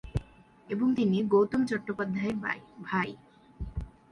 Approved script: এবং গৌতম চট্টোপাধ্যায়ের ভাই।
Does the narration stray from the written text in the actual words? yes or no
yes